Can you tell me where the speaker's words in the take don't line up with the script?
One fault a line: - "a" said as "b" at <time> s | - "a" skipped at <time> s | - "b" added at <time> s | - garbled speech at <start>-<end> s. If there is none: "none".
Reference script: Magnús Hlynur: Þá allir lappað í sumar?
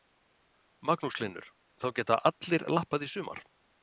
- "geta" added at 2.0 s